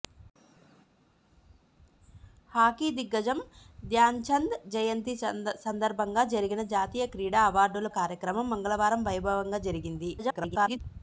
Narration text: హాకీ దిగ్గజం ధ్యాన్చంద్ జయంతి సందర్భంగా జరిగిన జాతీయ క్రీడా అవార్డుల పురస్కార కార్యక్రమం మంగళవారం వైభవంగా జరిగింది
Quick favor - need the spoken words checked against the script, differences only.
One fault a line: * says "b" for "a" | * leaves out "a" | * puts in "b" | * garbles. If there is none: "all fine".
* leaves out "పురస్కార"
* garbles